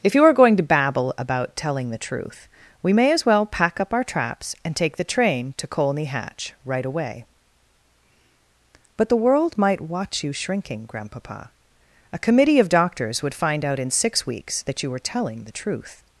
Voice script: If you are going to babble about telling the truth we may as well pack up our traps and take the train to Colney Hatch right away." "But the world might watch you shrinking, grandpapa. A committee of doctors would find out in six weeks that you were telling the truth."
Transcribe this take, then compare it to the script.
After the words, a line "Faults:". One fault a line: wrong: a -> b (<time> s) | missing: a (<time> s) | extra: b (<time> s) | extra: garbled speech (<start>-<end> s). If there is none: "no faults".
If you are going to babble about telling the truth we may as well pack up our traps and take the train to Colney Hatch right away." "But the world might watch you shrinking, grandpapa. A committee of doctors would find out in six weeks that you were telling the truth."
Faults:
no faults